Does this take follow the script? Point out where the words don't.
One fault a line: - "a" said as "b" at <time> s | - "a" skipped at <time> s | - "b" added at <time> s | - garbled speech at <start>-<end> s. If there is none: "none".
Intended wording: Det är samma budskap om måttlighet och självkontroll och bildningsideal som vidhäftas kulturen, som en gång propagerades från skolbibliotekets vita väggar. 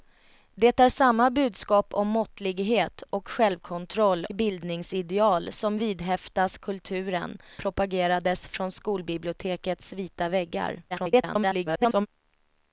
- "och" skipped at 4.2 s
- "som en gång" skipped at 7.4 s
- garbled speech at 10.9-12.1 s